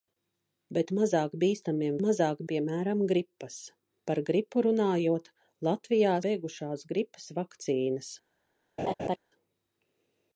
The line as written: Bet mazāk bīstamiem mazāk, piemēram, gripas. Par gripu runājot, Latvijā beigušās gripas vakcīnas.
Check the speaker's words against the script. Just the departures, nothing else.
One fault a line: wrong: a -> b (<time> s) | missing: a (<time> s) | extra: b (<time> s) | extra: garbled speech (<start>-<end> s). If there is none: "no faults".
no faults